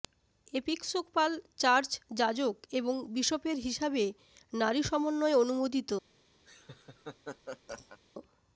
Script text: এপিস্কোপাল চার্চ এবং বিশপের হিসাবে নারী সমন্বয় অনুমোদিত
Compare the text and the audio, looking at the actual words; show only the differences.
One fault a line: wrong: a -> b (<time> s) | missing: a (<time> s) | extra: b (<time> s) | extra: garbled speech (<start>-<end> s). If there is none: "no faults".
extra: যাজক (2.1 s)